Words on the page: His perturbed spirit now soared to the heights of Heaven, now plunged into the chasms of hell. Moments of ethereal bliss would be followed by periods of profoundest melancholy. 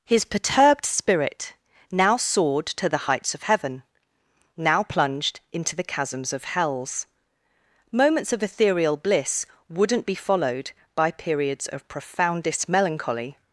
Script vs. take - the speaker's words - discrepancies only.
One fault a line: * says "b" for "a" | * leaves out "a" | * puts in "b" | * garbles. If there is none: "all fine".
* says "hells" for "hell"
* says "wouldn't" for "would"